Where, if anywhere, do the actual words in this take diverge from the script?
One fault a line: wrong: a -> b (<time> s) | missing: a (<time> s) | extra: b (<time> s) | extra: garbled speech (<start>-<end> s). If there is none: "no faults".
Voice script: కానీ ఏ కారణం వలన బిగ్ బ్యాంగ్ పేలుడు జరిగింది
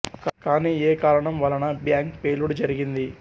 missing: బిగ్ (1.6 s)